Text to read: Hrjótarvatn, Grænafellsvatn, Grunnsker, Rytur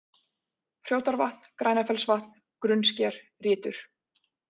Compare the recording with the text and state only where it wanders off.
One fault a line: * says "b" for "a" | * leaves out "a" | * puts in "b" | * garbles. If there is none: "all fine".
all fine